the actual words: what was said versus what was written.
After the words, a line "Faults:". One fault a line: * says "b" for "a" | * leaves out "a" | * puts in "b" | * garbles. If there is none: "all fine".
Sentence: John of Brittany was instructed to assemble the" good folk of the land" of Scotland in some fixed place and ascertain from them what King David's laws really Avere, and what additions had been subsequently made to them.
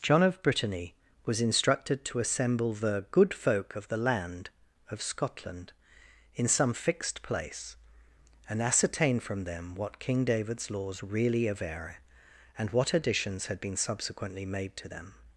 John of Brittany was instructed to assemble the" good folk of the land" of Scotland in some fixed place and ascertain from them what King David's laws really Avere, and what additions had been subsequently made to them.
Faults:
all fine